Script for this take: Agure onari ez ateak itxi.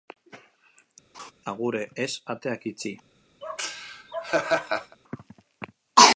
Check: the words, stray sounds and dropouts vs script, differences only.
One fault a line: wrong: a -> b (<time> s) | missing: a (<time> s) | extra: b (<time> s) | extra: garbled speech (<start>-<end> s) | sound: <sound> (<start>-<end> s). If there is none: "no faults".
sound: laugh (1.1-1.3 s)
missing: onari (1.8 s)
sound: laugh (3.4-5.0 s)